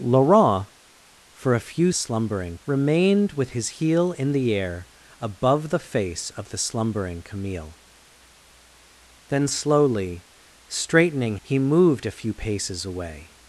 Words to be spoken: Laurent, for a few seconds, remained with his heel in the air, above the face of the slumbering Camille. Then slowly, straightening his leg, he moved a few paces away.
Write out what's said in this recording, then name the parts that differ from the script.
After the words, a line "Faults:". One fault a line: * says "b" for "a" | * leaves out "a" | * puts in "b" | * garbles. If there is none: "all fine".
Laurent, for a few slumbering, remained with his heel in the air, above the face of the slumbering Camille. Then slowly, straightening he moved a few paces away.
Faults:
* says "slumbering" for "seconds"
* leaves out "his leg"